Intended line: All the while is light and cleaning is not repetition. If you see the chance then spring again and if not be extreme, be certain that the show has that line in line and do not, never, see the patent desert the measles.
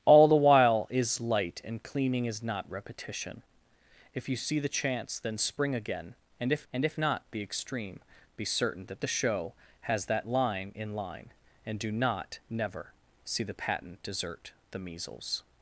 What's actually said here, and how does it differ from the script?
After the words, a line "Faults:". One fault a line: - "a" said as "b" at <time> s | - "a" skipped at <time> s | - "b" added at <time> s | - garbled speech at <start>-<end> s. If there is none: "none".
All the while is light and cleaning is not repetition. If you see the chance then spring again and if and if not be extreme, be certain that the show has that line in line and do not, never, see the patent desert the measles.
Faults:
- "and if" added at 6.7 s